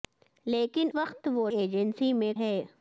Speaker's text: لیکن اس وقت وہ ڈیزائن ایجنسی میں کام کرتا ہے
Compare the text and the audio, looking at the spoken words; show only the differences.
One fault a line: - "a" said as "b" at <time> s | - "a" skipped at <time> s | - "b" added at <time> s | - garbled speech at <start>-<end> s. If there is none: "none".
- "اس" skipped at 0.9 s
- "ڈیزائن" skipped at 1.5 s
- "کام کرتا" skipped at 2.3 s